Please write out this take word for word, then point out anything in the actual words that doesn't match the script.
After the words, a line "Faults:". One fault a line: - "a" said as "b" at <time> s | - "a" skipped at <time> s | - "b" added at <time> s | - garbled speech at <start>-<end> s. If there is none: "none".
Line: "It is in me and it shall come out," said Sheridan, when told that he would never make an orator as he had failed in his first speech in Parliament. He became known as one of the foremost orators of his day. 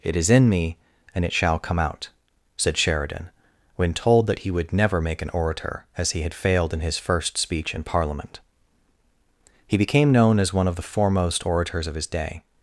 "It is in me and it shall come out," said Sheridan, when told that he would never make an orator as he had failed in his first speech in Parliament. He became known as one of the foremost orators of his day.
Faults:
none